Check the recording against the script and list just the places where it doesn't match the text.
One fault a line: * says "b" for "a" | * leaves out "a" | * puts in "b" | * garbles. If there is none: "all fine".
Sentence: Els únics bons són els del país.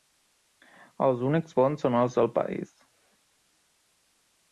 all fine